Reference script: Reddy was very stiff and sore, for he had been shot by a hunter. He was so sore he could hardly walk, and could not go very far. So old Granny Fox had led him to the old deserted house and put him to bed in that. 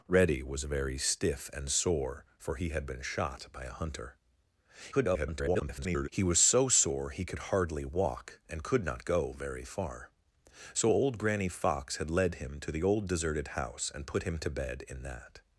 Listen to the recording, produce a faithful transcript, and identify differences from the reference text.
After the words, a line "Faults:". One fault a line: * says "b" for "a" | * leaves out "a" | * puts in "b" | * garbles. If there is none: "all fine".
Reddy was very stiff and sore, for he had been shot by a hunter. [garbled] He was so sore he could hardly walk, and could not go very far. So old Granny Fox had led him to the old deserted house and put him to bed in that.
Faults:
* garbles